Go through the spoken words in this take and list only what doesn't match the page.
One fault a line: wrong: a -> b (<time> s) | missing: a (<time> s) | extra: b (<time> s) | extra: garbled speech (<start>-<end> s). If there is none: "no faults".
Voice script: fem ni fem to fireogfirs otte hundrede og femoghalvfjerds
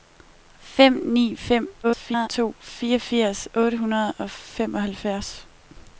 extra: garbled speech (1.8-2.3 s)